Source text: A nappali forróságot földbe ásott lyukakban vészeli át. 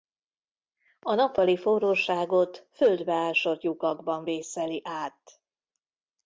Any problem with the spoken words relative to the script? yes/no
no